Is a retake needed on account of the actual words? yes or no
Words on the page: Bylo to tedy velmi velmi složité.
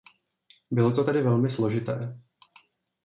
yes